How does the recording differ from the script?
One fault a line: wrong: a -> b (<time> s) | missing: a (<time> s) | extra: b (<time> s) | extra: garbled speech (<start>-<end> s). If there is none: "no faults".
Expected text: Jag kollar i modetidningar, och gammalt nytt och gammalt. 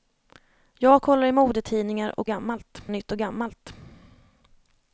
no faults